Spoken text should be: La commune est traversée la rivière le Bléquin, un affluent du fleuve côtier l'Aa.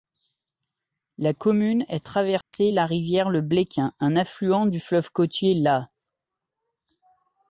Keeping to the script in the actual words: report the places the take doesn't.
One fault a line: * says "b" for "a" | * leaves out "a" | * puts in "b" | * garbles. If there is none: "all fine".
all fine